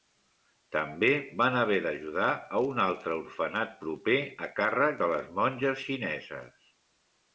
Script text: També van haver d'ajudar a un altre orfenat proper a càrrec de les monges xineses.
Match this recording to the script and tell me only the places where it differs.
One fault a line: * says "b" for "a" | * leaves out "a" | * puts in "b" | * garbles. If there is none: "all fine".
all fine